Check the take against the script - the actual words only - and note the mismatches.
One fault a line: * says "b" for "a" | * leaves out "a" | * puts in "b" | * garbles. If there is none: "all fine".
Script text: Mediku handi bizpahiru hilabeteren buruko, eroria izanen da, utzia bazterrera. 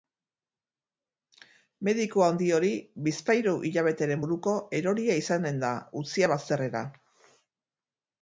* puts in "hori"